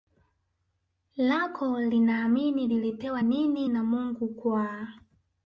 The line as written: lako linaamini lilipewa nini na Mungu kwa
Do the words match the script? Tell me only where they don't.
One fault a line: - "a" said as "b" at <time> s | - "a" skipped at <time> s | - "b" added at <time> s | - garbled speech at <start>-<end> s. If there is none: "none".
none